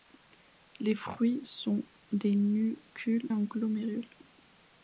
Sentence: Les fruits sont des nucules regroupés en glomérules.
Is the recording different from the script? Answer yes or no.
yes